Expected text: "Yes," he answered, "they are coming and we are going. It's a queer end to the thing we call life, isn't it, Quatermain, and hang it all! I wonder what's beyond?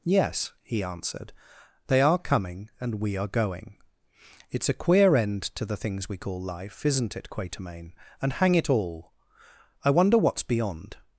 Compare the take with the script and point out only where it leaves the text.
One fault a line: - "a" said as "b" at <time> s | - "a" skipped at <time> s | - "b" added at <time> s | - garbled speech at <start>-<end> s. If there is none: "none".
- "thing" said as "things" at 5.8 s